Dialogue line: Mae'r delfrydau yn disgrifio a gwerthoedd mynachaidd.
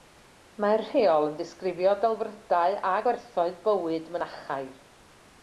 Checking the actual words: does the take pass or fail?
fail